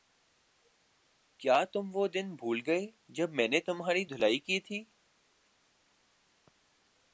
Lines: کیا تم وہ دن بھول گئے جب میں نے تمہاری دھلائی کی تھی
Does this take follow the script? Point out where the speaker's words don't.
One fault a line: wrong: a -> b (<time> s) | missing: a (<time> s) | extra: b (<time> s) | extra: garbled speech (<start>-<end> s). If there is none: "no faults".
no faults